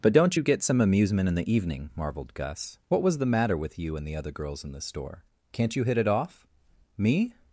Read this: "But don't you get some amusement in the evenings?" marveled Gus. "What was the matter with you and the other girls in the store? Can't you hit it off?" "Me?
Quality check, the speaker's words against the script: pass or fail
fail